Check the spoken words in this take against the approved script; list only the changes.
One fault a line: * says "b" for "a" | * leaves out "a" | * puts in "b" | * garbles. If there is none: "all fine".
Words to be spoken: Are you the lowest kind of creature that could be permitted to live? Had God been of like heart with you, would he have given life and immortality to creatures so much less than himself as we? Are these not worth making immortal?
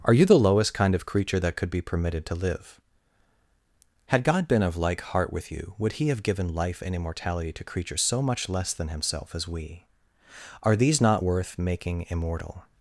all fine